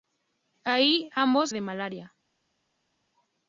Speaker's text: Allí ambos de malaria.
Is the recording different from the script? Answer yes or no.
no